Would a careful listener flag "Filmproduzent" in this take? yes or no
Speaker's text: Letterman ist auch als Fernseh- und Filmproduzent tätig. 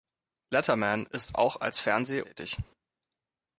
yes